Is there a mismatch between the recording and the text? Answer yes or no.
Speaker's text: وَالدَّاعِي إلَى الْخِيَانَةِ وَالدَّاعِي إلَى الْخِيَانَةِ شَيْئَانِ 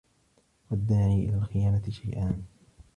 yes